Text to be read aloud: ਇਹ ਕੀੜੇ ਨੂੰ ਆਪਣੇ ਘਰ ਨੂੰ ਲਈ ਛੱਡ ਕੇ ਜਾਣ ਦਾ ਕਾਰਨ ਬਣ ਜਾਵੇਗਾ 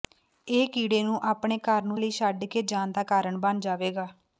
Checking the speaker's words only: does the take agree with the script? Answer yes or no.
yes